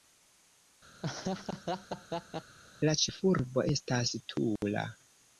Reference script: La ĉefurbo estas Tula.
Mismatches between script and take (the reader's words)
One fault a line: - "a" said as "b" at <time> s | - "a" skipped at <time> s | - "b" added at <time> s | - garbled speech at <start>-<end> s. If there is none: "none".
none